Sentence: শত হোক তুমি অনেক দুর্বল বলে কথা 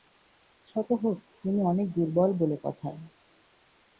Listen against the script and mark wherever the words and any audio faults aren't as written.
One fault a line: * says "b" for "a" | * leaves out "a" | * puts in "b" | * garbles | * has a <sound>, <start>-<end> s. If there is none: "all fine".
all fine